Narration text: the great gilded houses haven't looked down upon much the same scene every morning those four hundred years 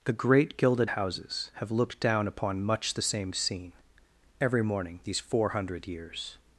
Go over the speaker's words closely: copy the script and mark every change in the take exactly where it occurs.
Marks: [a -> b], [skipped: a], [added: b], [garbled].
the great gilded houses [haven't -> have] looked down upon much the same scene every morning [those -> these] four hundred years